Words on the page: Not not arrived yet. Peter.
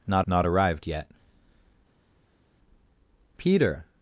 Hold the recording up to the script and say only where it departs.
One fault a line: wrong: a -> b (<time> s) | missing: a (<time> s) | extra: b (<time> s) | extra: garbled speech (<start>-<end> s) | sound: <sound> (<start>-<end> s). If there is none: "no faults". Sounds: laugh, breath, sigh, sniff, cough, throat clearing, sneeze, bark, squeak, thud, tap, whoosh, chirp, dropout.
no faults